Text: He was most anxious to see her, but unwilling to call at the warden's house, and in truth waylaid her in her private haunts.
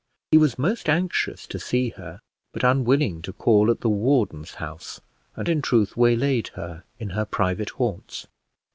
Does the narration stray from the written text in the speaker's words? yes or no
no